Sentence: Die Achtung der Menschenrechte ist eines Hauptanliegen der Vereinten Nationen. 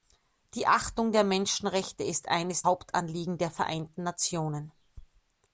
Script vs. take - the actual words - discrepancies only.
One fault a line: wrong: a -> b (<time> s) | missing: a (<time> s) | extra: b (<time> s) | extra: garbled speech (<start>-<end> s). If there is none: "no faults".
no faults